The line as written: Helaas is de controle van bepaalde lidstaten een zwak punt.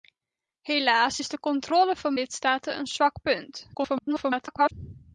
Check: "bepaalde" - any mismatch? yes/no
yes